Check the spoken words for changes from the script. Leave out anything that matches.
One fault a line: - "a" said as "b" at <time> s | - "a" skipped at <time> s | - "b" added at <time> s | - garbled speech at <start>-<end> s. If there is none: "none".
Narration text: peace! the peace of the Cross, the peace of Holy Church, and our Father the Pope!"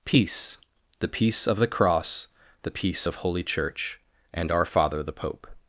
none